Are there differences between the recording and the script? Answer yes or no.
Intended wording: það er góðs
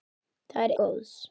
no